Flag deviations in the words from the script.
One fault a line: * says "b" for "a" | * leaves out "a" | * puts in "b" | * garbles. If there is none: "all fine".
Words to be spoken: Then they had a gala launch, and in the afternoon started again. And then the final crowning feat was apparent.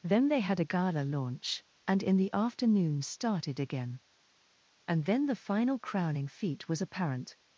all fine